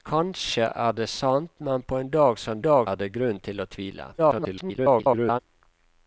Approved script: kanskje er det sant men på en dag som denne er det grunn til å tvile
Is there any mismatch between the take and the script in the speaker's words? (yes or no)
yes